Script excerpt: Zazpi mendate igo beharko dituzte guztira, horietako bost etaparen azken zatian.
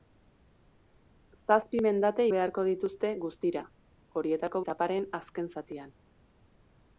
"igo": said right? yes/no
no